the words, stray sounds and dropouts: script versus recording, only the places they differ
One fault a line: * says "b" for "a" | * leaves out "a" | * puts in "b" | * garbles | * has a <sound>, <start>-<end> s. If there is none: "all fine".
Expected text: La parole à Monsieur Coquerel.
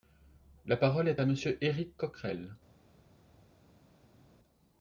* puts in "est"
* puts in "Éric"